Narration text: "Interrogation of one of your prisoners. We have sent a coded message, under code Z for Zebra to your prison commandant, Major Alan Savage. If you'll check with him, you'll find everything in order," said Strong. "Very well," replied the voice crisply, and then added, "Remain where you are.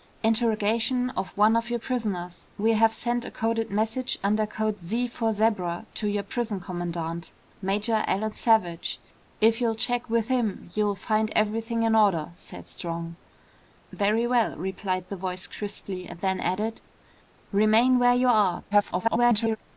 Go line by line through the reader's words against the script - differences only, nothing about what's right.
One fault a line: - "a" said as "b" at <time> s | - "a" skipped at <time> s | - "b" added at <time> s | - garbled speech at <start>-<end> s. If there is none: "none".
- garbled speech at 18.7-19.6 s